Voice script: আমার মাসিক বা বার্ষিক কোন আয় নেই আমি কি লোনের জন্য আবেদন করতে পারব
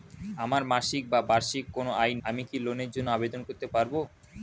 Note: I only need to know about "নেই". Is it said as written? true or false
false